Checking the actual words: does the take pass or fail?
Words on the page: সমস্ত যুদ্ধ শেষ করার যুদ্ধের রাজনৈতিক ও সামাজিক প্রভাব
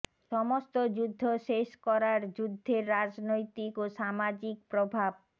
pass